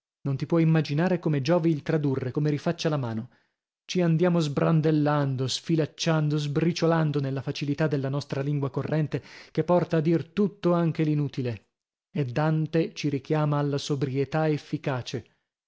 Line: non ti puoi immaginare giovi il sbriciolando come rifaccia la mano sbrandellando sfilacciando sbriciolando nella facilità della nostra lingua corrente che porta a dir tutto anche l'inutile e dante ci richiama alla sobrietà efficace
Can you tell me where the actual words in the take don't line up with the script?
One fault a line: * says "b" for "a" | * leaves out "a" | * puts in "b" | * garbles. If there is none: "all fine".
* puts in "come"
* says "tradurre" for "sbriciolando"
* puts in "ci andiamo"